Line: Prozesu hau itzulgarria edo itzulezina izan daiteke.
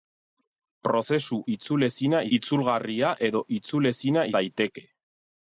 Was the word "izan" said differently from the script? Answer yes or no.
yes